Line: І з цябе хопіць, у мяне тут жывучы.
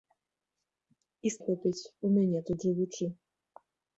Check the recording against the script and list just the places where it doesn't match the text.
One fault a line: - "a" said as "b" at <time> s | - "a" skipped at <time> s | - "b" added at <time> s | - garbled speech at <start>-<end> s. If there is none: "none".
- "цябе" skipped at 1.4 s